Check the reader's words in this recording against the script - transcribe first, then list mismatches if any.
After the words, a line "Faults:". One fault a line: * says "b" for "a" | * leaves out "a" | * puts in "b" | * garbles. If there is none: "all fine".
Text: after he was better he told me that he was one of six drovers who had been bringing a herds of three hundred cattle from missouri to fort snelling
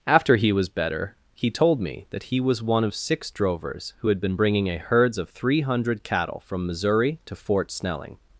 after he was better he told me that he was one of six drovers who had been bringing a herds of three hundred cattle from missouri to fort snelling
Faults:
all fine